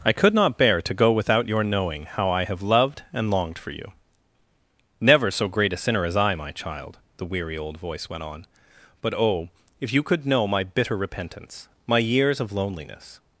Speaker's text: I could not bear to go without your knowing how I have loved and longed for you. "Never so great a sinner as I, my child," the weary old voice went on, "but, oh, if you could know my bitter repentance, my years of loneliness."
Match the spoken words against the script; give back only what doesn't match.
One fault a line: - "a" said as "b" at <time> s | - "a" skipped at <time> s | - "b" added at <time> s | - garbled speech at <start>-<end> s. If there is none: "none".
none